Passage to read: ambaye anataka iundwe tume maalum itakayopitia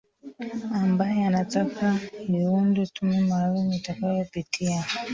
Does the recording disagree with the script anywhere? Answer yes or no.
no